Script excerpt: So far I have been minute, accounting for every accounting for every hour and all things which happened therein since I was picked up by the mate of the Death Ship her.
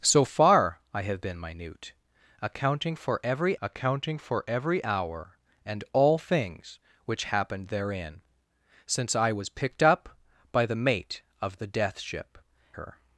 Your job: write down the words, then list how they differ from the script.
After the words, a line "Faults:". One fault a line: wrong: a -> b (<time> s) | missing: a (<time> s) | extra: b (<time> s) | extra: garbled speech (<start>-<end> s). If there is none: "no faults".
So far I have been minute, accounting for every accounting for every hour and all things which happened therein since I was picked up by the mate of the Death Ship her.
Faults:
no faults